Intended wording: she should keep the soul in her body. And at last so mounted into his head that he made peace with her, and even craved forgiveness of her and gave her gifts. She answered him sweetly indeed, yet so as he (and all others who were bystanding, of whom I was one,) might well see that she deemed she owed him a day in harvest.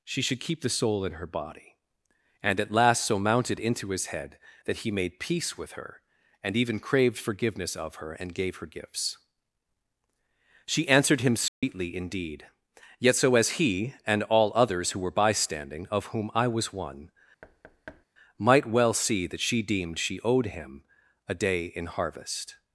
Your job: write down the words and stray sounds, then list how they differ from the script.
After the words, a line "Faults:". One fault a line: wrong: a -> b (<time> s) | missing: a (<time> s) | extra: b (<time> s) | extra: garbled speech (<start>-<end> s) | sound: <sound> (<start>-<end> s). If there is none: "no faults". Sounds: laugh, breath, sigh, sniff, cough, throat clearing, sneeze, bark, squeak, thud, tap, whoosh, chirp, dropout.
she should keep the soul in her body. And at last so mounted into his head that he made peace with her, and even craved forgiveness of her and gave her gifts. She answered him sweetly indeed, yet so as he (and all others who were bystanding, of whom I was one,) might well see that she deemed she owed him a day in harvest.
Faults:
sound: dropout (11.5-11.6 s)
sound: thud (17.4-18.1 s)